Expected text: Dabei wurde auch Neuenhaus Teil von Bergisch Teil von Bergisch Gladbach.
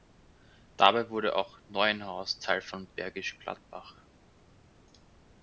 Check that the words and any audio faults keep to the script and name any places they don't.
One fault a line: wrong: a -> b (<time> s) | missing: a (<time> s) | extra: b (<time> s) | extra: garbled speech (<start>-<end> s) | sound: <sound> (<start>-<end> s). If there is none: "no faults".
missing: Teil von Bergisch (3.4 s)